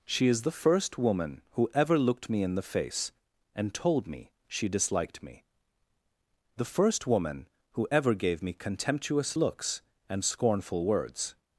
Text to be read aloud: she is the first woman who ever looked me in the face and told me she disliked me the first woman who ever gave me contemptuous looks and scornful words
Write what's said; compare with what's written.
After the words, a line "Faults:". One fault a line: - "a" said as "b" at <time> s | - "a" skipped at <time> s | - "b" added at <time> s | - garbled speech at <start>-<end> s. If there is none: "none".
she is the first woman who ever looked me in the face and told me she disliked me the first woman who ever gave me contemptuous looks and scornful words
Faults:
none